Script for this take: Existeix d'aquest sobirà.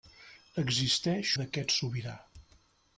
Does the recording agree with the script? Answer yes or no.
yes